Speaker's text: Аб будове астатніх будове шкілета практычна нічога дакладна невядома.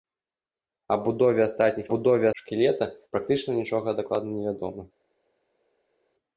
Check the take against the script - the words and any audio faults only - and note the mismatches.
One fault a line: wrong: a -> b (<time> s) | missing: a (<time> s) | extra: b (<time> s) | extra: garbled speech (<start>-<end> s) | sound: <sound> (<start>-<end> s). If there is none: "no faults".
no faults